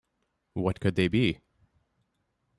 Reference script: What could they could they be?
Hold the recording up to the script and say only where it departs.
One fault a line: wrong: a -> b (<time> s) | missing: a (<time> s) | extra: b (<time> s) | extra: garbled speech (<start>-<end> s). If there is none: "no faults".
missing: could they (1.1 s)